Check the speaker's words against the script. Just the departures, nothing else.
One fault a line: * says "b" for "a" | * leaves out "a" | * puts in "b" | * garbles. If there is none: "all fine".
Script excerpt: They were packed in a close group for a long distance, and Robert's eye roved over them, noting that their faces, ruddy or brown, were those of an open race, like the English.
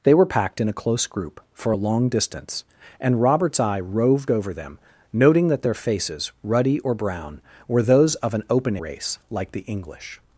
all fine